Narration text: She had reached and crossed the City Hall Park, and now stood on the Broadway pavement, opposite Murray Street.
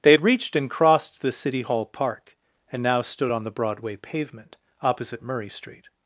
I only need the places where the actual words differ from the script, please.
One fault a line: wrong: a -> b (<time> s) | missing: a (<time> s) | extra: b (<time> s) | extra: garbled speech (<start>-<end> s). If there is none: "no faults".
wrong: She -> They (0.0 s)